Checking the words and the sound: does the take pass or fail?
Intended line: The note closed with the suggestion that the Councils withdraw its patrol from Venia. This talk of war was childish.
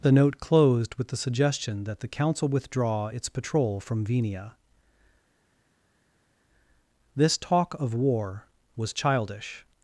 fail